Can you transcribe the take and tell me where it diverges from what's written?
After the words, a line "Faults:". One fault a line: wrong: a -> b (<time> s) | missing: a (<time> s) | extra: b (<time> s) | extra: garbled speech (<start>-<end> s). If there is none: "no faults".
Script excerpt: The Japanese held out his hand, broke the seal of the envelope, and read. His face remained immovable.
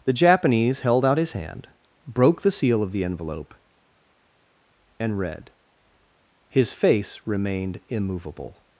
The Japanese held out his hand, broke the seal of the envelope, and read. His face remained immovable.
Faults:
no faults